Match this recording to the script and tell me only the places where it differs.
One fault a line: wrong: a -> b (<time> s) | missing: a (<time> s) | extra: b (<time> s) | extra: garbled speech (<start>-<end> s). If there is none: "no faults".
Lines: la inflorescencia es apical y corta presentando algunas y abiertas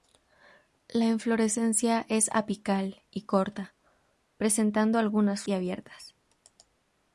no faults